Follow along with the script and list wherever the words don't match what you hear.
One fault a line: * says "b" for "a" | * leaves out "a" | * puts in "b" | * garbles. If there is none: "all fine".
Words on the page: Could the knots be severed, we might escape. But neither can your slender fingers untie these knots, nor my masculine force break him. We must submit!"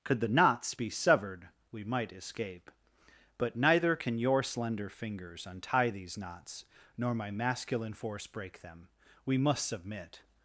* says "them" for "him"